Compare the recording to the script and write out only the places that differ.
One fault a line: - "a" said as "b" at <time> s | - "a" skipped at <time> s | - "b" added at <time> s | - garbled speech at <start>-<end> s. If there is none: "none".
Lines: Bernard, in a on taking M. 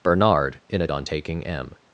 none